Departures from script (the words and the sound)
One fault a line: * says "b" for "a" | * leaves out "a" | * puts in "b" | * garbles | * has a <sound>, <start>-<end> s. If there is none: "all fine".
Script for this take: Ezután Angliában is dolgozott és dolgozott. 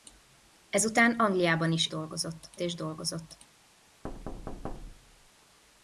* has a thud, 4.0-5.3 s